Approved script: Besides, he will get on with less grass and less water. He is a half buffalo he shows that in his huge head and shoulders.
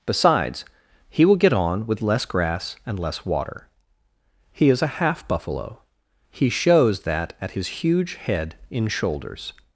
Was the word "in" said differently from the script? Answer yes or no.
yes